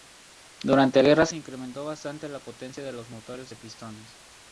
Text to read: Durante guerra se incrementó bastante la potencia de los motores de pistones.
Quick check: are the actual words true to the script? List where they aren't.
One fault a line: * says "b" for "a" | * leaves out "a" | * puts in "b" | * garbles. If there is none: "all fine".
all fine